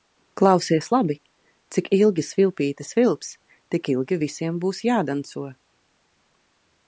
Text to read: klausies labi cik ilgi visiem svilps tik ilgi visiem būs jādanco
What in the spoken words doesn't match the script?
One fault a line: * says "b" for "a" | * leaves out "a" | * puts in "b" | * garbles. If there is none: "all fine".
* says "svilpīte" for "visiem"